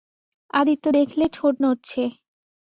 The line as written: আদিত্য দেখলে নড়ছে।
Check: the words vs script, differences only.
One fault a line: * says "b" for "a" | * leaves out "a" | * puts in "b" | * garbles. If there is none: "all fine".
* puts in "ঠোঁট"